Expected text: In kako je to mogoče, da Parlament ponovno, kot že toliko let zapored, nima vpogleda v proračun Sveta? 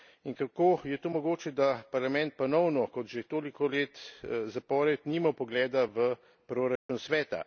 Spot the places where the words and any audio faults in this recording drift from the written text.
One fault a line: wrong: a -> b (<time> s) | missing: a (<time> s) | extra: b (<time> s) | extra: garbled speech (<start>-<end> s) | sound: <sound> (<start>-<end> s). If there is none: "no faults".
sound: dropout (6.8-6.9 s)